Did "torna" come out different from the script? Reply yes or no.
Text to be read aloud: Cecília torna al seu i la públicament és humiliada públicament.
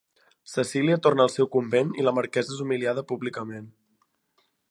no